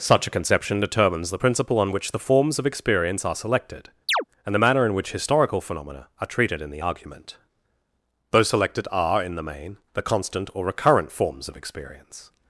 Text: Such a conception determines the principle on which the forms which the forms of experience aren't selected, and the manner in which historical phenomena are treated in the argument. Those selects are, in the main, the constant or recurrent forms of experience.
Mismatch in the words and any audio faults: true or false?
true